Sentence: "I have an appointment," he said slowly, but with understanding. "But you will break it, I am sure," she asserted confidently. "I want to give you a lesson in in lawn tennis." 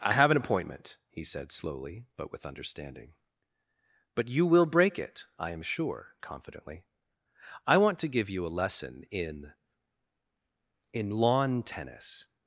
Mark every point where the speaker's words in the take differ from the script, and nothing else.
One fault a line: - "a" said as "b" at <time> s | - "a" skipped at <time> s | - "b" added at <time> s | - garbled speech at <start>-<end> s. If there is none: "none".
- "she asserted" skipped at 6.2 s